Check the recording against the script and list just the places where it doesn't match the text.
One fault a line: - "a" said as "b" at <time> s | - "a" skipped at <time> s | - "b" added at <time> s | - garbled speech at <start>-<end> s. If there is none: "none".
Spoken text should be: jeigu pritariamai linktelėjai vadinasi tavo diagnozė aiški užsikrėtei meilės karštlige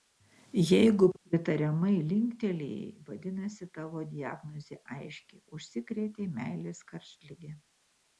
none